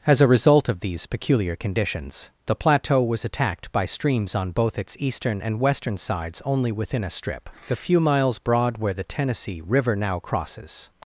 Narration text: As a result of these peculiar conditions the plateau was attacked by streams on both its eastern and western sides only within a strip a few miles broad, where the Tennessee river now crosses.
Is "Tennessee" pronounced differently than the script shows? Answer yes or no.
no